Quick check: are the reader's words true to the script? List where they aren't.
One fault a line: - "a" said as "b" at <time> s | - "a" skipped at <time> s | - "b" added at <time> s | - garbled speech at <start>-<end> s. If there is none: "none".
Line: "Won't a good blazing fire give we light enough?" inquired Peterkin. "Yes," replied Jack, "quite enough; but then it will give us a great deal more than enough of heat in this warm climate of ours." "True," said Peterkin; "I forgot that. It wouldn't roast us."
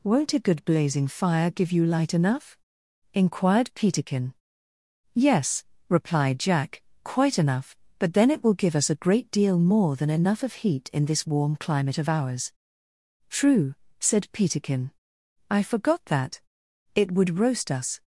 - "we" said as "you" at 1.7 s
- "wouldn't" said as "would" at 17.1 s